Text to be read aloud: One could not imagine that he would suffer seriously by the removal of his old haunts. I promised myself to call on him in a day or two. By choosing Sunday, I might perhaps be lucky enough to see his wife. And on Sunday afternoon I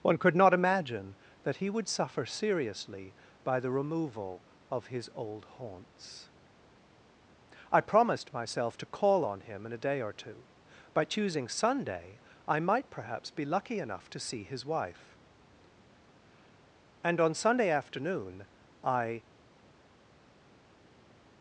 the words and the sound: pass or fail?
pass